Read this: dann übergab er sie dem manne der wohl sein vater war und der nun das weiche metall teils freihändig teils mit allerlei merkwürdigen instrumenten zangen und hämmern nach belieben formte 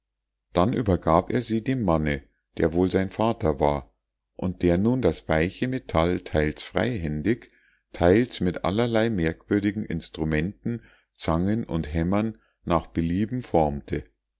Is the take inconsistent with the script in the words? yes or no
no